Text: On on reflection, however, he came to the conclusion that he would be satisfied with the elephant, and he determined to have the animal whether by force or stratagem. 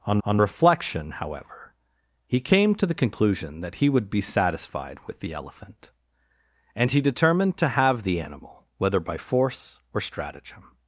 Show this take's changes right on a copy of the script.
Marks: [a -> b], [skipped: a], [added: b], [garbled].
On on reflection, however, he came to the conclusion that he would be satisfied with the elephant, and he determined to have the animal whether by force or stratagem.